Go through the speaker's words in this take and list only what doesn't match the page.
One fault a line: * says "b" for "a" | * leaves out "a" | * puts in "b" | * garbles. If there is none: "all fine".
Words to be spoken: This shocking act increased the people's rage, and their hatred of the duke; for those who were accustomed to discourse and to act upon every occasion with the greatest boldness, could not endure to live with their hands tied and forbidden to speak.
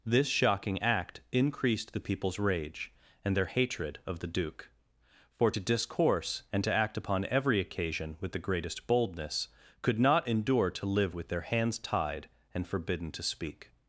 * leaves out "those who were accustomed"